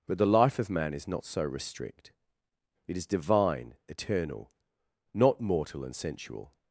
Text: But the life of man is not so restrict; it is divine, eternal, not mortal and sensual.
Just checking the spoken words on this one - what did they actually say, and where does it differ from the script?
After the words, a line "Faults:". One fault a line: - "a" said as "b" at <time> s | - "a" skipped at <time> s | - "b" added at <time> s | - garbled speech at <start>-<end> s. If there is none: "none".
But the life of man is not so restrict; it is divine, eternal, not mortal and sensual.
Faults:
none